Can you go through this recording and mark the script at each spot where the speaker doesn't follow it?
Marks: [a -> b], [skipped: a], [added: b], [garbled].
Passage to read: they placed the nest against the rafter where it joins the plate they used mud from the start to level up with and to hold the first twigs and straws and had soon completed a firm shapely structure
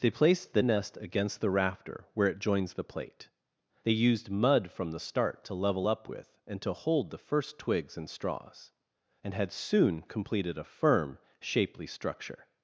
they placed the nest against the rafter where it joins the plate they used mud from the start to level up with and to hold the first twigs and straws and had soon completed a firm shapely structure